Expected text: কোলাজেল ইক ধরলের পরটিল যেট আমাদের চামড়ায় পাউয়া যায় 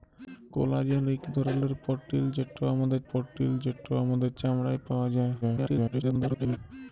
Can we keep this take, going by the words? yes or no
no